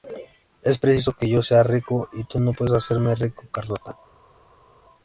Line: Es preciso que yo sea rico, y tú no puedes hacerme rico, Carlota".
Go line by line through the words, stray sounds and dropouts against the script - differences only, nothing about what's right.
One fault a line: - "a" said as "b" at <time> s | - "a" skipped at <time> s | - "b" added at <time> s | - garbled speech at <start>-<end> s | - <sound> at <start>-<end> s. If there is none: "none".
none